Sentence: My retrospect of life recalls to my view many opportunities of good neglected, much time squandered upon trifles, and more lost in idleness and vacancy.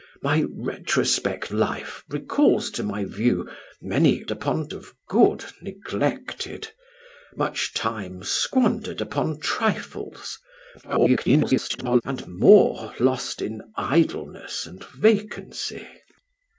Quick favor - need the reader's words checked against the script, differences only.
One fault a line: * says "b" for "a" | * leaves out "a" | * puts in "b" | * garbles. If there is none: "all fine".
* leaves out "of"
* says "upon" for "opportunities"
* garbles